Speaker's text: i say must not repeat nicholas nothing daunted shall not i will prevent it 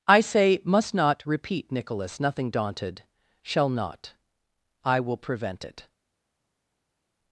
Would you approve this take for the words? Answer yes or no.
yes